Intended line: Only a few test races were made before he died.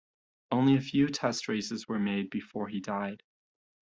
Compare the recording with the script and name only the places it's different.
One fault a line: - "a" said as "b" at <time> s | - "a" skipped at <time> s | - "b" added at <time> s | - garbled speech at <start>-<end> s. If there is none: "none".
none